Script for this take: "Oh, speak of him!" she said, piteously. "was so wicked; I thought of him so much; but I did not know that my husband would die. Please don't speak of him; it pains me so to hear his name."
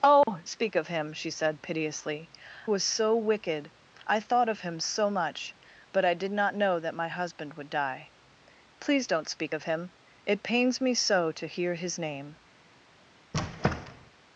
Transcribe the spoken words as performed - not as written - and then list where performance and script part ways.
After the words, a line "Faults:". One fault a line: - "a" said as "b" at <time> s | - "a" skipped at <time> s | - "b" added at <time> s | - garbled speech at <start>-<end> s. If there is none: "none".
"Oh, speak of him!" she said, piteously. "was so wicked; I thought of him so much; but I did not know that my husband would die. Please don't speak of him; it pains me so to hear his name."
Faults:
none